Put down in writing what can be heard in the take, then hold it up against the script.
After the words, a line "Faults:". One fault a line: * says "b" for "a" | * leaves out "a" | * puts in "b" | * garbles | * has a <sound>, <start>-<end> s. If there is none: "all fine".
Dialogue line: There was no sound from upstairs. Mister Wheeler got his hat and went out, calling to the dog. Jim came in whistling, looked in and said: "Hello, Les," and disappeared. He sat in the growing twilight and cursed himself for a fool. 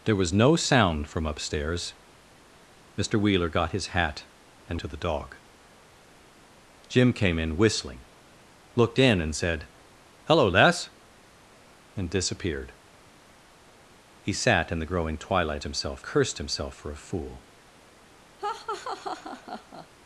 There was no sound from upstairs. Mister Wheeler got his hat and to the dog. Jim came in whistling, looked in and said: "Hello, Les," and disappeared. He sat in the growing twilight himself cursed himself for a fool.
Faults:
* leaves out "went out calling"
* says "himself" for "and"
* has a laugh, 18.4-19.9 s